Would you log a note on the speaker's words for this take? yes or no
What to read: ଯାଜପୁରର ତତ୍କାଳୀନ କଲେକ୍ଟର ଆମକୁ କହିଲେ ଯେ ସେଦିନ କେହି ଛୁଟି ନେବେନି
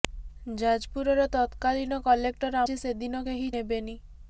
yes